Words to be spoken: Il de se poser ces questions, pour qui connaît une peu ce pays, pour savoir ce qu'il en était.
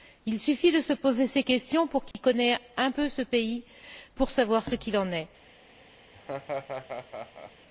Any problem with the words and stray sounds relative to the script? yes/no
yes